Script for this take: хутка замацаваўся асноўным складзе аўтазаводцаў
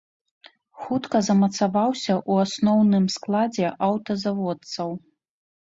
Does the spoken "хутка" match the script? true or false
true